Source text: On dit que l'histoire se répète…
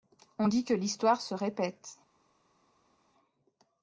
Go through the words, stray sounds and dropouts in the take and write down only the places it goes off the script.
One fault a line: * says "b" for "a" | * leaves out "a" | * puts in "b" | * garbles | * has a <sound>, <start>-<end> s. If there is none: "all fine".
all fine